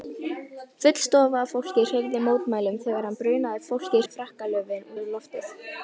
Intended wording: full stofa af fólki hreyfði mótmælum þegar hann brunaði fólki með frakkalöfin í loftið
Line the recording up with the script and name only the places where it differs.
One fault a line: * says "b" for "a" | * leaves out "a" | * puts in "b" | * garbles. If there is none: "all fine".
all fine